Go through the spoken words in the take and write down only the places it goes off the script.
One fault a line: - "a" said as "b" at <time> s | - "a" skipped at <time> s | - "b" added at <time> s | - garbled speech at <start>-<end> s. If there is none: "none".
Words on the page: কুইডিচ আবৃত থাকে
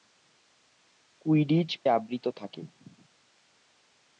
none